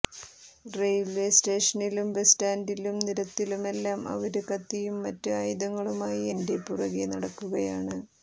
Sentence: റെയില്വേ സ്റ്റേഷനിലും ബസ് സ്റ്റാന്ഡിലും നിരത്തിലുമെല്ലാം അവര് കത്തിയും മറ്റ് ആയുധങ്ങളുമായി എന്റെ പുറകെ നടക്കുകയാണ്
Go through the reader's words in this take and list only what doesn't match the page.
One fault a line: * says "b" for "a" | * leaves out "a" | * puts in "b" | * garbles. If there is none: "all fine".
all fine